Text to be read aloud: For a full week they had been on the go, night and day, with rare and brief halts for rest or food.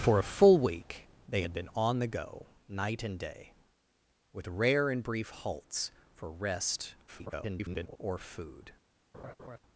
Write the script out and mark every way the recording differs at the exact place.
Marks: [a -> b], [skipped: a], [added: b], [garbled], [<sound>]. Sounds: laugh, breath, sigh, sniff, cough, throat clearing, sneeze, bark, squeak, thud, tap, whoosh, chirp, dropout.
For a full week they had been on the go, night and day, with rare and brief halts for rest [garbled] or food. [laugh]